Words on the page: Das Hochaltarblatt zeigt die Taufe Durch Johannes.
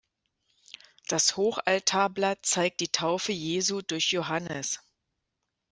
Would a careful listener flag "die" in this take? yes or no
no